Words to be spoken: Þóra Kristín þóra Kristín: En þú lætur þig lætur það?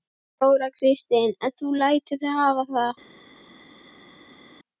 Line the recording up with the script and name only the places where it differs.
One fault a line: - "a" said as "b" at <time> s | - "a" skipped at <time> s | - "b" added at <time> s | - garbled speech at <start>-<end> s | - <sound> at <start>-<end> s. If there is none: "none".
- "þóra Kristín" skipped at 1.4 s
- "lætur" said as "hafa" at 2.4 s